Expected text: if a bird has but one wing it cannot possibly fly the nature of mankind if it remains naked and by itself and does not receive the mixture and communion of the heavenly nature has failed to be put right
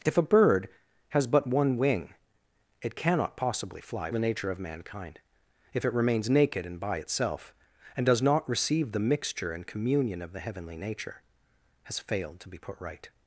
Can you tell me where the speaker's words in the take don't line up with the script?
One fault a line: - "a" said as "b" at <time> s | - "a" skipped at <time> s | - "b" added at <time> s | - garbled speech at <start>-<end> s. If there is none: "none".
none